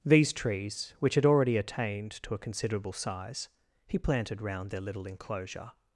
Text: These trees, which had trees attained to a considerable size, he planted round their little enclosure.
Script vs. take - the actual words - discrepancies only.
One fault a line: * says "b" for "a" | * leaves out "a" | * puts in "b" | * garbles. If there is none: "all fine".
* says "already" for "trees"